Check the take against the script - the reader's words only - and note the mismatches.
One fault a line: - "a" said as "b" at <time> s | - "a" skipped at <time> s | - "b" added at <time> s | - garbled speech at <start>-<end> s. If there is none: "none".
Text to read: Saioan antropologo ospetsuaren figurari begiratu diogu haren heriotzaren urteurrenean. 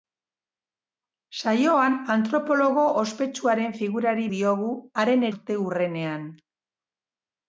- "begiratu" skipped at 4.3 s
- "heriotzaren" skipped at 5.3 s